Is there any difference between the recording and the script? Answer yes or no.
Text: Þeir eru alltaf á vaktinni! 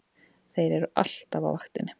no